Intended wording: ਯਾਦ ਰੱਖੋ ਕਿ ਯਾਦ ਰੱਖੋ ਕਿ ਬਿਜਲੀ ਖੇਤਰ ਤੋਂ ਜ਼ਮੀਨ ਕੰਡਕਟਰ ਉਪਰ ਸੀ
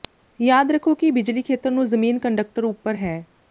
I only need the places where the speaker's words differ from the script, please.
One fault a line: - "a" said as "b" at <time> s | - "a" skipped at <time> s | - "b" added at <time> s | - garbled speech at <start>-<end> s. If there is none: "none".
- "ਯਾਦ ਰੱਖੋ ਕਿ" skipped at 1.1 s
- "ਤੋਂ" said as "ਨੂੰ" at 1.7 s
- "ਸੀ" said as "ਹੈ" at 2.9 s